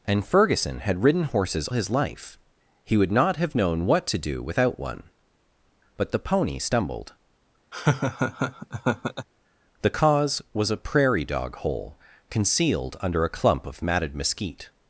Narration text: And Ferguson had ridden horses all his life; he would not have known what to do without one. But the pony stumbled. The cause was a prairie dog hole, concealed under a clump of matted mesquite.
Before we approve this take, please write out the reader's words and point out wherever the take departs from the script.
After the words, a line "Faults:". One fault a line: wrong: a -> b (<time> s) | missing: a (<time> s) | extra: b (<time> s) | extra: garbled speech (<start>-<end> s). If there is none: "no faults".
And Ferguson had ridden horses his life; he would not have known what to do without one. But the pony stumbled. The cause was a prairie dog hole, concealed under a clump of matted mesquite.
Faults:
missing: all (1.7 s)